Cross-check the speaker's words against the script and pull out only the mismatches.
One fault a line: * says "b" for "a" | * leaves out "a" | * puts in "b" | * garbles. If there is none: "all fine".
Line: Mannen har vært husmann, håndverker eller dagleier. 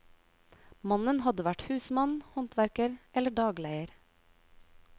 * says "hadde" for "har"